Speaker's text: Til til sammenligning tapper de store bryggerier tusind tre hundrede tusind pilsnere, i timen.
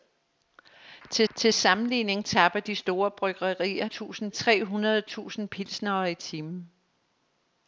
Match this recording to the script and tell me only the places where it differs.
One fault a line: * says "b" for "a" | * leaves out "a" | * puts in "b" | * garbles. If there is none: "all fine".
all fine